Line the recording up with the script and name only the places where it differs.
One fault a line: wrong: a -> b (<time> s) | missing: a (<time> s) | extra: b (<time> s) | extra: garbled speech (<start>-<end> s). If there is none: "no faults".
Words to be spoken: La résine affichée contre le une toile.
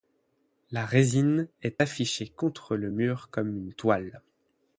extra: est (1.6 s)
extra: mur comme (2.9 s)